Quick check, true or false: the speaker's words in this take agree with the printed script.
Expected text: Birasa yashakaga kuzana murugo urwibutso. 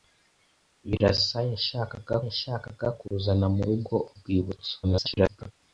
false